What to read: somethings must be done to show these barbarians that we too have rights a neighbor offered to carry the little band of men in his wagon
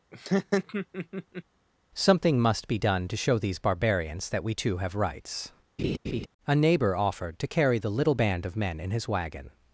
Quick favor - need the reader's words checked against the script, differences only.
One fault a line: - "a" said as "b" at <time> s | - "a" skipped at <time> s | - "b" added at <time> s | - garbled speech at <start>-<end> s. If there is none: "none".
- "somethings" said as "something" at 2.0 s